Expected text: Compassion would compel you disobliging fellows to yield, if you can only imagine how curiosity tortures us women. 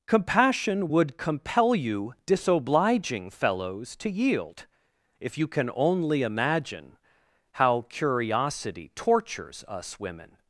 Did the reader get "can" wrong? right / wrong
right